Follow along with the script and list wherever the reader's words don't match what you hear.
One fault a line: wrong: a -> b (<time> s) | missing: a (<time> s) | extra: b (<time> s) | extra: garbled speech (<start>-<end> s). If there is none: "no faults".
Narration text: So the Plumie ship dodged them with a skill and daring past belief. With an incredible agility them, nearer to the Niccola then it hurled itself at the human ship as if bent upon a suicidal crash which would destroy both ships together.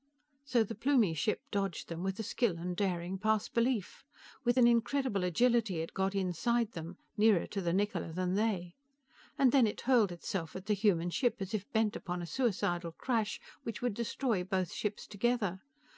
extra: it got inside (5.8 s)
extra: than they And (8.1 s)